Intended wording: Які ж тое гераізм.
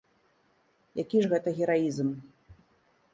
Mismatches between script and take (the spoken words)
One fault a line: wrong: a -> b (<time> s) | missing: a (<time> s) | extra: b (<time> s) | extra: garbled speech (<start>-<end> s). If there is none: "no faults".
wrong: тое -> гэта (1.3 s)